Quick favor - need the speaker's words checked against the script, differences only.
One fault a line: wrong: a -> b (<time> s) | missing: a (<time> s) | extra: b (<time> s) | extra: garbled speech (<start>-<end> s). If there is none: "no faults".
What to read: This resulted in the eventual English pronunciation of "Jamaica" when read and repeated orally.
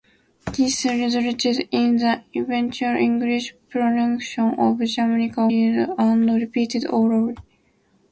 missing: when (5.5 s)